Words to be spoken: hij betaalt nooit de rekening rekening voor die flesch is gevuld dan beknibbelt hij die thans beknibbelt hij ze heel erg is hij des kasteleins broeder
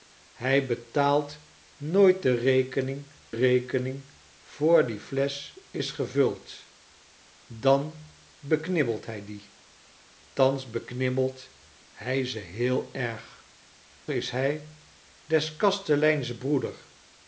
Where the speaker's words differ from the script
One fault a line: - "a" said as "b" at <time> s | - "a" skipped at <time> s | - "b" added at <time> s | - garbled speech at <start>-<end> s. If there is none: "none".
none